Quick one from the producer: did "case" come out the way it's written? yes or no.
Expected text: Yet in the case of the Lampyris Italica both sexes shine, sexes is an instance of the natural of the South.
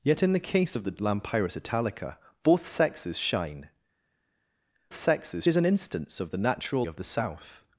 yes